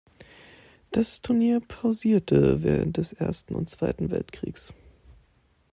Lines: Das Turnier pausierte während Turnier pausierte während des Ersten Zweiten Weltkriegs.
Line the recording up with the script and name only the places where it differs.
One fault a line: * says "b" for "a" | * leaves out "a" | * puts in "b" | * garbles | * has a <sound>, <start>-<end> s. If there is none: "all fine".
* leaves out "Turnier pausierte während"
* puts in "und"